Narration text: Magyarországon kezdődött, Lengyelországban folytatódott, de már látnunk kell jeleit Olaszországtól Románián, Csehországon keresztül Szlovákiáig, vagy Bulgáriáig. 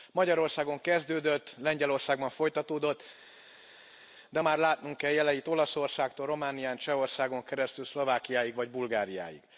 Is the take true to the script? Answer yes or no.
yes